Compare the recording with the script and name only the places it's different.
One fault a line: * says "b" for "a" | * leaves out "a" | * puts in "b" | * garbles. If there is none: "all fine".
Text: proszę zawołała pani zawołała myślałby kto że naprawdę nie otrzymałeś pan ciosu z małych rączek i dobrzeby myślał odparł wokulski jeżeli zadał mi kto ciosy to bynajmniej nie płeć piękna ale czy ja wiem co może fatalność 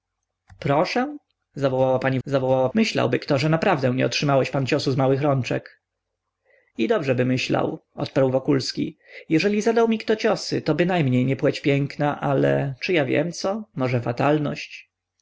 all fine